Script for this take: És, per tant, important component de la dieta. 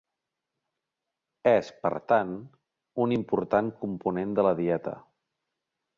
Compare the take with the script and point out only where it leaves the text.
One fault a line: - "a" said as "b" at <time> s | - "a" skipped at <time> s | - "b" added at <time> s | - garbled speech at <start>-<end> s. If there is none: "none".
- "un" added at 3.0 s